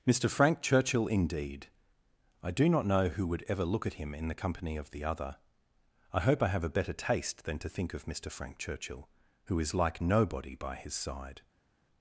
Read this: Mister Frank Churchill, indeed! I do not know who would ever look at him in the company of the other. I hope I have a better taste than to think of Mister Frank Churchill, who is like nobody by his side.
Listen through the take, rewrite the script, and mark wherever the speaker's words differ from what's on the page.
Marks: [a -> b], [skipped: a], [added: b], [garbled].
Mister Frank Churchill, indeed! I do not know who would ever look at him in the company of the other. I hope I have a better taste than to think of Mister Frank Churchill, who is like nobody by his side.